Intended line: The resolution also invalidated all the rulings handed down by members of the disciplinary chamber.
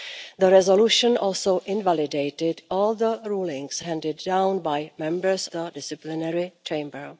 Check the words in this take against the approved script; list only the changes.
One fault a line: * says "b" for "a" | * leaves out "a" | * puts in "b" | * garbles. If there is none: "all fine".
* leaves out "of"